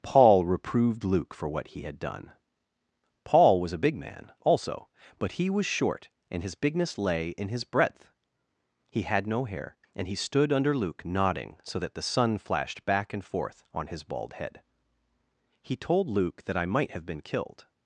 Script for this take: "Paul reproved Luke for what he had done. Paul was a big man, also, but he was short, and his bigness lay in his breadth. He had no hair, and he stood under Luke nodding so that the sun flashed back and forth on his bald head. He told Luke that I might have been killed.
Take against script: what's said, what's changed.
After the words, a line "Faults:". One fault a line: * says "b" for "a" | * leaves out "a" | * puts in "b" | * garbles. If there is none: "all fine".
"Paul reproved Luke for what he had done. Paul was a big man, also, but he was short, and his bigness lay in his breadth. He had no hair, and he stood under Luke nodding so that the sun flashed back and forth on his bald head. He told Luke that I might have been killed.
Faults:
all fine